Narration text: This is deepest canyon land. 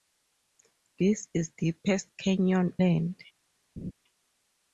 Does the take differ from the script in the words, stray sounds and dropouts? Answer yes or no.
yes